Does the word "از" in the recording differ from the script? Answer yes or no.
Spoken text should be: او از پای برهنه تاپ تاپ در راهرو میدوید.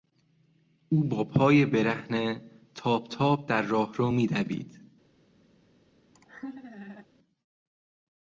yes